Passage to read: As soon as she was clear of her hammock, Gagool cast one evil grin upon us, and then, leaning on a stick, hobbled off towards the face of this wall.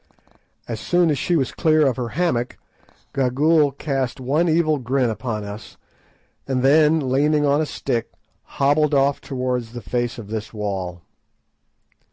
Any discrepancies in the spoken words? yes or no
no